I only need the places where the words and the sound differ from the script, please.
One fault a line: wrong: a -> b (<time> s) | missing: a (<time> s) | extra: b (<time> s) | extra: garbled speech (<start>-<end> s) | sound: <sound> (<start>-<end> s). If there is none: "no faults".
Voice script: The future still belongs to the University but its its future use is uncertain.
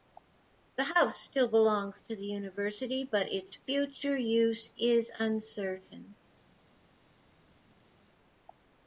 wrong: future -> house (0.8 s)
missing: its (3.5 s)